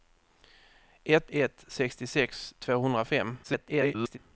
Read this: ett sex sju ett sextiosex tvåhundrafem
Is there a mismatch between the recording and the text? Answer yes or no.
yes